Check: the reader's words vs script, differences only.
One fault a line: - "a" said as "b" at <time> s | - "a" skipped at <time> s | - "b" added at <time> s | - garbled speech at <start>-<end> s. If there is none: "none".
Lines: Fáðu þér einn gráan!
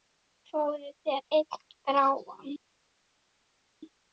none